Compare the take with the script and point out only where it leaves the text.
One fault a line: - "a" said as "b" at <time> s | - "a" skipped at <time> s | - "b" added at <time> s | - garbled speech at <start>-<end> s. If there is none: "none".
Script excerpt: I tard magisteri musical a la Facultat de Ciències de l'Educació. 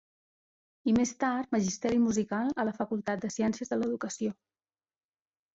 - "més" added at 1.0 s